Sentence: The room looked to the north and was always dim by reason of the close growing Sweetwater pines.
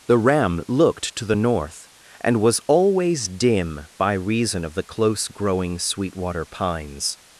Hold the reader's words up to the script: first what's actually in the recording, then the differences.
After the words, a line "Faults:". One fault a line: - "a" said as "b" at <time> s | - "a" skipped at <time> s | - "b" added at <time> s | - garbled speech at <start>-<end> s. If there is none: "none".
The ram looked to the north and was always dim by reason of the close growing Sweetwater pines.
Faults:
- "room" said as "ram" at 0.2 s